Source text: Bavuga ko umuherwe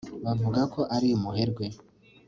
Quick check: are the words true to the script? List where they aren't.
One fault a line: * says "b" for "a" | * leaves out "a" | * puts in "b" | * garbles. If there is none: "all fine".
* puts in "ari"